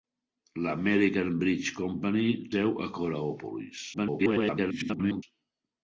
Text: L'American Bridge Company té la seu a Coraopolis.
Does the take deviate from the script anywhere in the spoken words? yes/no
yes